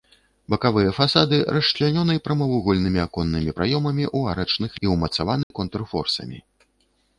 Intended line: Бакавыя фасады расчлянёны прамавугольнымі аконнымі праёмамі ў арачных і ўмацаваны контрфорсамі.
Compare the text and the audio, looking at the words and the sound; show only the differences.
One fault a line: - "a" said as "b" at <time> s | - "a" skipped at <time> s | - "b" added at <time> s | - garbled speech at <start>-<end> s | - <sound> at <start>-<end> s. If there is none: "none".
- dropout at 5.4-5.5 s